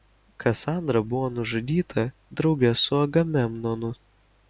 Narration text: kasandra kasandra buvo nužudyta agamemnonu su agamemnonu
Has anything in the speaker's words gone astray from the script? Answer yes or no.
yes